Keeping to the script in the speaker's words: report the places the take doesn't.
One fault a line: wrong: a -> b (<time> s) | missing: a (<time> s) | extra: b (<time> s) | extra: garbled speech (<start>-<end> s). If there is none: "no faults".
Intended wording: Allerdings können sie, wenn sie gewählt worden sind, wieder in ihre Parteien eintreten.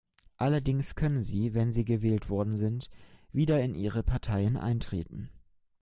no faults